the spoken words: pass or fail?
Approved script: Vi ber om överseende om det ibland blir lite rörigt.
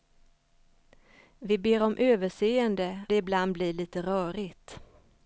fail